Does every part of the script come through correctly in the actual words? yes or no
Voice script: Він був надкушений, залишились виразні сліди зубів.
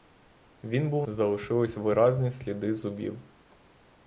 no